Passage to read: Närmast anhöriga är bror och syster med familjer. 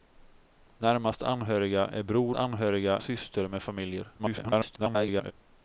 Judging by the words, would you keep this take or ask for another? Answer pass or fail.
fail